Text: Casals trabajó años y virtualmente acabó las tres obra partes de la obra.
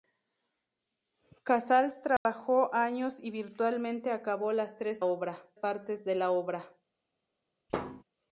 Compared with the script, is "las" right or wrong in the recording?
right